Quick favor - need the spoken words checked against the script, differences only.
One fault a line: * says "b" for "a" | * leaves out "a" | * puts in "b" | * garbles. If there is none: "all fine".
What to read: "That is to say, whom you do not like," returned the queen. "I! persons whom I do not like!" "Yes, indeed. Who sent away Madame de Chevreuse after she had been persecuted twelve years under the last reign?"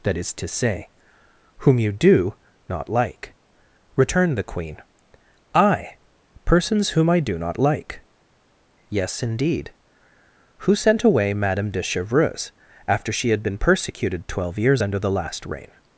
all fine